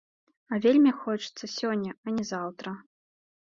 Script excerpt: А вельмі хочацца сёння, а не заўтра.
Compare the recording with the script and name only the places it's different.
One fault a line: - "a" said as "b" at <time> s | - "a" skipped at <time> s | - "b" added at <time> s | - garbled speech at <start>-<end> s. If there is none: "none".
none